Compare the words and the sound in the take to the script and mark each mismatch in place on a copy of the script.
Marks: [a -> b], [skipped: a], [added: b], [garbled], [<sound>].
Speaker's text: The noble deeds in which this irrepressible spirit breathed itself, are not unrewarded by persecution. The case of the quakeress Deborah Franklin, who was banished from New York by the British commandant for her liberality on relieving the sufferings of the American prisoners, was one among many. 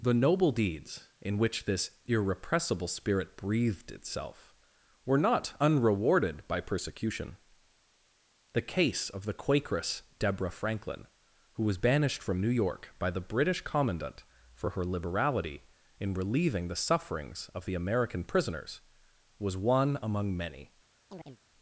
The noble deeds in which this irrepressible spirit breathed itself, [are -> were] not unrewarded by persecution. The case of the quakeress Deborah Franklin, who was banished from New York by the British commandant for her liberality [on -> in] relieving the sufferings of the American prisoners, was one among many. [chirp]